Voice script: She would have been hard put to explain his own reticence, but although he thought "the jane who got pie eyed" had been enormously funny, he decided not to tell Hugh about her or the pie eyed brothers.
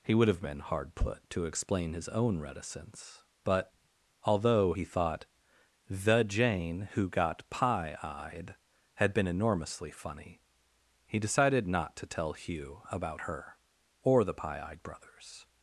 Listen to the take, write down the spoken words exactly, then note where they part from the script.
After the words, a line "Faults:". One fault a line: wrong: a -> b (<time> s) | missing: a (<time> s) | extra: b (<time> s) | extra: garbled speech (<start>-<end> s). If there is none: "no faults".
He would have been hard put to explain his own reticence, but although he thought "the jane who got pie eyed" had been enormously funny, he decided not to tell Hugh about her or the pie eyed brothers.
Faults:
wrong: She -> He (0.0 s)